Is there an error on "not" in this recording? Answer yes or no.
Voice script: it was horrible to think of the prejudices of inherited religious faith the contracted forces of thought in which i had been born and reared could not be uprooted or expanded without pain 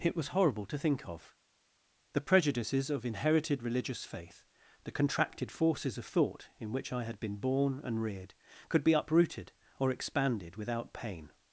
yes